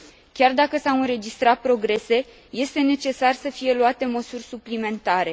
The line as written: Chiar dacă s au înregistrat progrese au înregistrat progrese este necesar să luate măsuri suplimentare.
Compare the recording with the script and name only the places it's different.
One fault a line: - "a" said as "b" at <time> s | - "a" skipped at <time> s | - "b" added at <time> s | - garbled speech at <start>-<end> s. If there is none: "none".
- "au înregistrat progrese" skipped at 2.2 s
- "fie" added at 3.5 s